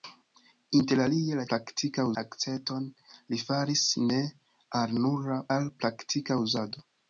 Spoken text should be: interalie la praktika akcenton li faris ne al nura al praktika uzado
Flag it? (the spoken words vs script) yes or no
no